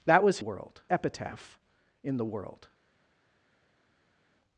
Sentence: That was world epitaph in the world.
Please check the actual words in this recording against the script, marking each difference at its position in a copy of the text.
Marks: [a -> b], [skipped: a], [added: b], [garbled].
That was world epitaph in the world.